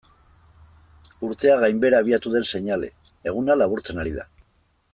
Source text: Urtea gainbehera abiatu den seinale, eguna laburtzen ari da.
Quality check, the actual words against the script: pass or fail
pass